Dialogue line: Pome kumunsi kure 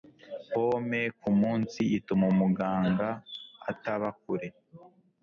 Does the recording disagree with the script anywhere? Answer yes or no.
yes